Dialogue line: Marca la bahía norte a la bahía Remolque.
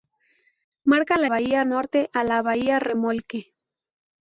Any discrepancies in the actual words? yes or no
no